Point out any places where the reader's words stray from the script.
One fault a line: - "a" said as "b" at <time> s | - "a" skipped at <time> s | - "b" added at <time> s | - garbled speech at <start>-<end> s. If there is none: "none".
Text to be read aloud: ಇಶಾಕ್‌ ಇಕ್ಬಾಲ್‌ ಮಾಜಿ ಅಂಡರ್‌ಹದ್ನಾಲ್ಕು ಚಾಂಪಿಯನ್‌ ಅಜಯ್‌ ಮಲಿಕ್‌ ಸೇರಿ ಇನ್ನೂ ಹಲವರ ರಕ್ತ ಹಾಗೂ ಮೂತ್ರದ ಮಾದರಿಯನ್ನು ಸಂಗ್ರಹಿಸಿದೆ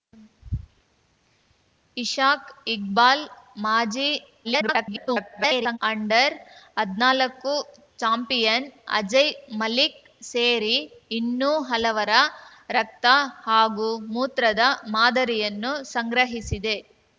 - garbled speech at 4.4-5.8 s